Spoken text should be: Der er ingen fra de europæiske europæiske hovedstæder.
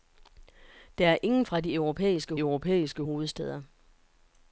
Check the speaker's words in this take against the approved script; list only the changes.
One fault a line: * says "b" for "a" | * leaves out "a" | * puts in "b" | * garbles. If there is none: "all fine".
all fine